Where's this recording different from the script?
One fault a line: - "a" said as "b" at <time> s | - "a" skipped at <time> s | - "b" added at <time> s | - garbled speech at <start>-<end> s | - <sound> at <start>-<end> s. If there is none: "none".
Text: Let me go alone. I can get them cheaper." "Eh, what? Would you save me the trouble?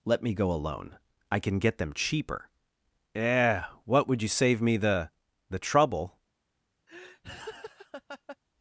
- "the" added at 5.5 s
- laugh at 6.9-8.4 s